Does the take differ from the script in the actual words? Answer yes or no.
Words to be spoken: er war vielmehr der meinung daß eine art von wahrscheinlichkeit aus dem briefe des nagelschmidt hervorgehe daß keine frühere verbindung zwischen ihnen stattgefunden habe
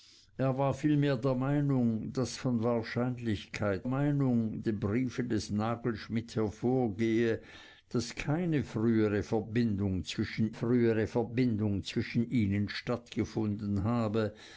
yes